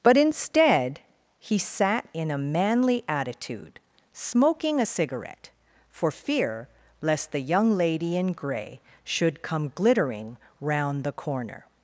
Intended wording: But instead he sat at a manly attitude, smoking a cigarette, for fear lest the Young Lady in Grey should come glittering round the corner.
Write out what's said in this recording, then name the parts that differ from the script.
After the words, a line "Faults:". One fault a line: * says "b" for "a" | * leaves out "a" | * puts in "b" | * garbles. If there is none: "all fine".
But instead he sat in a manly attitude, smoking a cigarette, for fear lest the Young Lady in Grey should come glittering round the corner.
Faults:
* says "in" for "at"